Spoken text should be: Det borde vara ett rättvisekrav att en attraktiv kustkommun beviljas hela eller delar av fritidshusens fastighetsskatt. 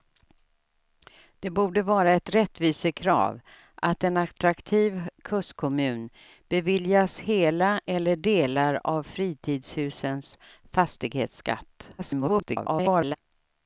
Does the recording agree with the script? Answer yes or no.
no